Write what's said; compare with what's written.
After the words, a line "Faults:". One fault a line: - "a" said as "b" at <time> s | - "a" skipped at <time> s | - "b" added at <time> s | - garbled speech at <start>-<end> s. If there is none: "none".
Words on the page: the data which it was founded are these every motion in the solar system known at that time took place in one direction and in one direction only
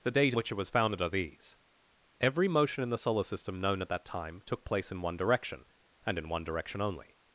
the data which it was founded are these every motion in the solar system known at that time took place in one direction and in one direction only
Faults:
none